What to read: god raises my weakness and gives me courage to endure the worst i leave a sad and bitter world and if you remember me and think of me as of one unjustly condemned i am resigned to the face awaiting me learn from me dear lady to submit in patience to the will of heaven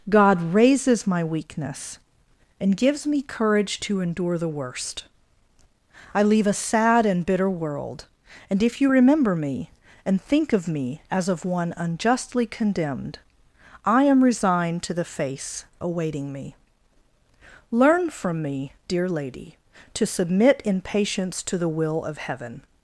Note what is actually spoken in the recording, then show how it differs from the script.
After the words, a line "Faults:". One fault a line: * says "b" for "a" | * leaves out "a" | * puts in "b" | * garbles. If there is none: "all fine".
god raises my weakness and gives me courage to endure the worst i leave a sad and bitter world and if you remember me and think of me as of one unjustly condemned i am resigned to the face awaiting me learn from me dear lady to submit in patience to the will of heaven
Faults:
all fine